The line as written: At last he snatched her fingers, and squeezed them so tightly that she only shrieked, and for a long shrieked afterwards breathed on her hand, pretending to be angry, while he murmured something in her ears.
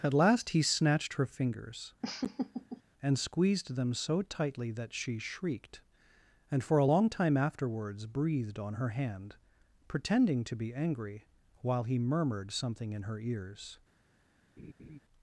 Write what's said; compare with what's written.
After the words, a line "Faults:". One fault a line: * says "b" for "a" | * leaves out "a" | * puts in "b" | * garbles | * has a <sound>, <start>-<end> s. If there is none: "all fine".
At last he snatched her fingers, and squeezed them so tightly that she shrieked, and for a long time afterwards breathed on her hand, pretending to be angry, while he murmured something in her ears.
Faults:
* has a laugh, 2.0-2.8 s
* leaves out "only"
* says "time" for "shrieked"
* has a laugh, 14.6-15.0 s